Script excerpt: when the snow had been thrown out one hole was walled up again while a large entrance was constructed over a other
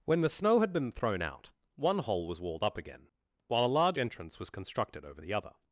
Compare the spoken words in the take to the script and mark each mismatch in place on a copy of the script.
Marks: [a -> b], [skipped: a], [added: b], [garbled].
when the snow had been thrown out one hole was walled up again while a large entrance was constructed over [a -> the] other